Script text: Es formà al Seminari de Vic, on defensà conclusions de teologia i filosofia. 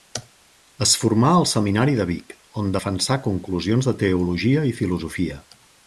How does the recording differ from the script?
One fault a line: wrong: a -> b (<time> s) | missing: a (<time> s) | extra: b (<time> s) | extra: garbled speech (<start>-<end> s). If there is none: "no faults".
no faults